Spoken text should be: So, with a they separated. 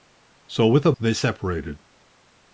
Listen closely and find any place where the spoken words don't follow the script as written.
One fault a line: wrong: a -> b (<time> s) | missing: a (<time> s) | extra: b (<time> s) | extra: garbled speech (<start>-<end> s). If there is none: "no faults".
no faults